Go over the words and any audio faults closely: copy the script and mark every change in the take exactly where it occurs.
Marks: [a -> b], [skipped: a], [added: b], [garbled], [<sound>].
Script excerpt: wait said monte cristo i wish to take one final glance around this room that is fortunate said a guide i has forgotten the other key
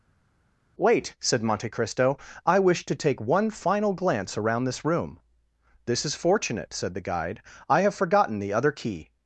wait said monte cristo i wish to take one final glance around this room [that -> this] is fortunate said [a -> the] guide i [has -> have] forgotten the other key